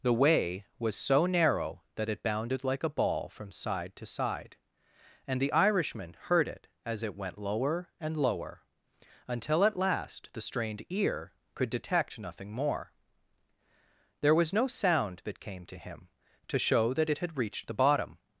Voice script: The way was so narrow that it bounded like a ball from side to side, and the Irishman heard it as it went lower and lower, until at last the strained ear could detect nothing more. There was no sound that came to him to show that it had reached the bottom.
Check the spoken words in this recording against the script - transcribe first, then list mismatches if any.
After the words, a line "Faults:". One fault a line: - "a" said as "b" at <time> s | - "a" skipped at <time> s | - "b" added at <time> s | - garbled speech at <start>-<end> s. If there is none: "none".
The way was so narrow that it bounded like a ball from side to side, and the Irishman heard it as it went lower and lower, until at last the strained ear could detect nothing more. There was no sound that came to him to show that it had reached the bottom.
Faults:
none